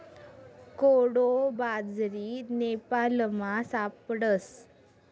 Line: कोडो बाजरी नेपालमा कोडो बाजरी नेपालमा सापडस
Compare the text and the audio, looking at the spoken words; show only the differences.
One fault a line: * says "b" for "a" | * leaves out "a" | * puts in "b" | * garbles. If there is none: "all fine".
* leaves out "कोडो बाजरी नेपालमा"